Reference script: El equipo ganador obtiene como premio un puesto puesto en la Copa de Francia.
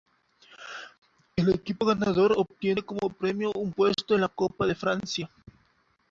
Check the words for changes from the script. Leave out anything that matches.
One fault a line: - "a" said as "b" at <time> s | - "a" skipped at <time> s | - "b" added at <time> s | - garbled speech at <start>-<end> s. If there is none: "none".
- "puesto" skipped at 4.2 s